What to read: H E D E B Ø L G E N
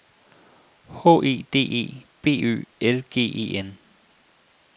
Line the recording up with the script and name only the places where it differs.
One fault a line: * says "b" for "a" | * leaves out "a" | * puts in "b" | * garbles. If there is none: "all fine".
all fine